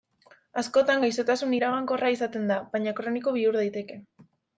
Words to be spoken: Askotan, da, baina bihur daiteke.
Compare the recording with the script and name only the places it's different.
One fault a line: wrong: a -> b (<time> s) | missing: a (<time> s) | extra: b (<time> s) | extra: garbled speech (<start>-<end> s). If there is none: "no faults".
extra: gaixotasun iragankorra izaten (1.0 s)
extra: kroniko (3.0 s)